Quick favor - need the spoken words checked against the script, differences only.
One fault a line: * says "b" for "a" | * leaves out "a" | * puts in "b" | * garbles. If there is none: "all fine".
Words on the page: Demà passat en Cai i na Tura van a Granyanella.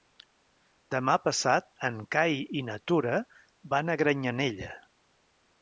all fine